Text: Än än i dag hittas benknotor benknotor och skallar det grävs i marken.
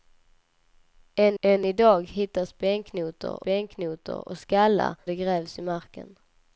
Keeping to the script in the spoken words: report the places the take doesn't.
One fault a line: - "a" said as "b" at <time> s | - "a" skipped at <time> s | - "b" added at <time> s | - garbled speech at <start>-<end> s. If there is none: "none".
none